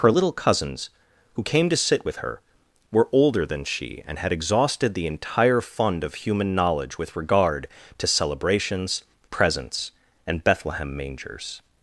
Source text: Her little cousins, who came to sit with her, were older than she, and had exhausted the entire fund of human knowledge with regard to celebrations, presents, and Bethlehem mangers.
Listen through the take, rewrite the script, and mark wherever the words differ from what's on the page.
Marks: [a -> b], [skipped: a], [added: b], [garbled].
Her little cousins, who came to sit with her, were older than she, and had exhausted the entire fund of human knowledge with regard to celebrations, presents, and Bethlehem mangers.